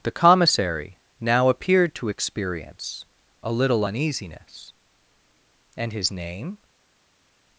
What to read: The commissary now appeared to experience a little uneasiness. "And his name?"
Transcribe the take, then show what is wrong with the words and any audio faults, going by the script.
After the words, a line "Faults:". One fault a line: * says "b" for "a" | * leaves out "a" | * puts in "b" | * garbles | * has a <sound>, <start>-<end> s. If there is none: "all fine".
The commissary now appeared to experience a little uneasiness. "And his name?"
Faults:
all fine